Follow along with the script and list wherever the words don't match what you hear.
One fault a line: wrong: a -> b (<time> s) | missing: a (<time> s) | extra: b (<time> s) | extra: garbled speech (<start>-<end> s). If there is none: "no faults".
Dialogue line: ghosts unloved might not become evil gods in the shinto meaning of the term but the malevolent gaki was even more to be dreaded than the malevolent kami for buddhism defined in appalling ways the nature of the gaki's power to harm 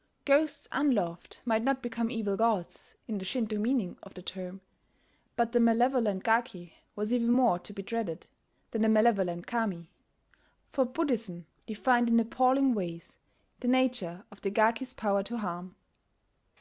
no faults